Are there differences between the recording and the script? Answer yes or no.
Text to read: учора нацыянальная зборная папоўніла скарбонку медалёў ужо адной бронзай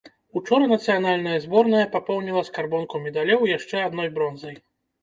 yes